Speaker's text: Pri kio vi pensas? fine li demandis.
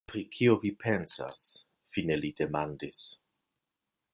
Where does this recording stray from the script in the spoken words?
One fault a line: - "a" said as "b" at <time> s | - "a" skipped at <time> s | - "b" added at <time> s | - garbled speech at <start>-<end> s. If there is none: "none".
none